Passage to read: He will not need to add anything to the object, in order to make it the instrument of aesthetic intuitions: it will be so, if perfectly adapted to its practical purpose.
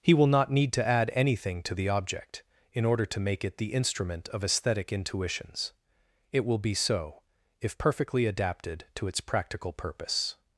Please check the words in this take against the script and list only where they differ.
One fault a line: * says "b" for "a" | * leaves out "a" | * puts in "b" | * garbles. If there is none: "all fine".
all fine